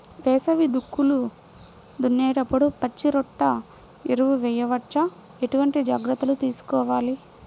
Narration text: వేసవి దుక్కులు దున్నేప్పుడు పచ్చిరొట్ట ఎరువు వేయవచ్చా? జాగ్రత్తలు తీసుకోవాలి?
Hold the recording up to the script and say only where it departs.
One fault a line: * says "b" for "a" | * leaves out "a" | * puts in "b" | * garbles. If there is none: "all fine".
* puts in "ఎటువంటి"